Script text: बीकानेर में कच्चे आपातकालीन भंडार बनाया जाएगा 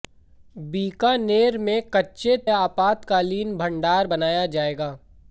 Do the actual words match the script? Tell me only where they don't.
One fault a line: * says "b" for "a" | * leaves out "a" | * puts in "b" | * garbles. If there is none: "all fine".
all fine